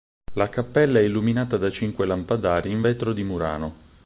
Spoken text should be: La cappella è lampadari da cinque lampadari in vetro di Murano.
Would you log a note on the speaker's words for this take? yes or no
yes